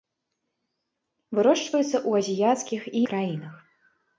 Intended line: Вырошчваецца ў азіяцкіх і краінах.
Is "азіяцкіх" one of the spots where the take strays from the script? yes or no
no